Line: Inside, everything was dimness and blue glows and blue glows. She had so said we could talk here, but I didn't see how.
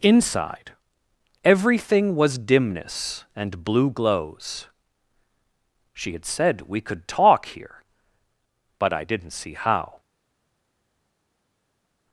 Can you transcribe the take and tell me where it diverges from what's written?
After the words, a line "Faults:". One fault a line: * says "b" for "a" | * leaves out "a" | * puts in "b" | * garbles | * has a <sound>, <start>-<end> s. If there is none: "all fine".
Inside, everything was dimness and blue glows. She had said we could talk here, but I didn't see how.
Faults:
* leaves out "and blue glows"
* leaves out "so"